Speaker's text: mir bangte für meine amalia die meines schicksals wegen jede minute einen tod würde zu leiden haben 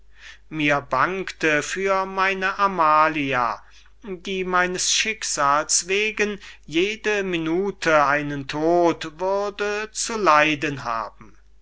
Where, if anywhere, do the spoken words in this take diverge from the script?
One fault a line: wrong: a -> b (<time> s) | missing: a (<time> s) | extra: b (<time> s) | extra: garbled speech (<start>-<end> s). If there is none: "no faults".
no faults